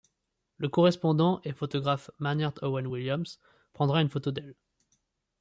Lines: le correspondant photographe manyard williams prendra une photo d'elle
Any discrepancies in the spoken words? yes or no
yes